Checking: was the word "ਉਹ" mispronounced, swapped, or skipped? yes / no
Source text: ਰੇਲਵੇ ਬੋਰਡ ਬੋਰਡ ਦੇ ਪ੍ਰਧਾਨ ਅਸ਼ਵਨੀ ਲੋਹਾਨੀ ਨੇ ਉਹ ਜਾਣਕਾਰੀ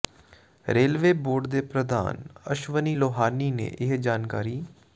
yes